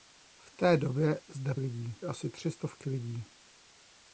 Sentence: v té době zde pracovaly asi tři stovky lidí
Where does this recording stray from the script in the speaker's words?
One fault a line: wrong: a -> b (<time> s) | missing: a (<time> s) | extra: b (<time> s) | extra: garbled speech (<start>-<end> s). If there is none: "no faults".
wrong: pracovaly -> lidí (1.6 s)